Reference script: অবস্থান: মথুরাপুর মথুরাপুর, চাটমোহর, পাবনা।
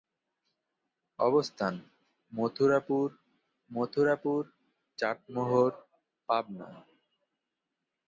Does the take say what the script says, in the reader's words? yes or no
yes